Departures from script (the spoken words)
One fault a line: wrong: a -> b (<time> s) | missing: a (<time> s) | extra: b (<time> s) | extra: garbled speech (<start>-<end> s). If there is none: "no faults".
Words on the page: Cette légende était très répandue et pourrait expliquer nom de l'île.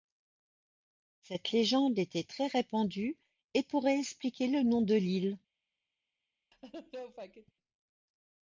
extra: le (4.5 s)